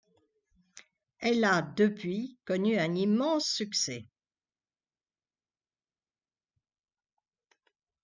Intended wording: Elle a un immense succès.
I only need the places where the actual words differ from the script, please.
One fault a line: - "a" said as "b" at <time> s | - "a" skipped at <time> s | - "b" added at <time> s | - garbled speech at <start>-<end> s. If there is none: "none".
- "depuis connu" added at 1.6 s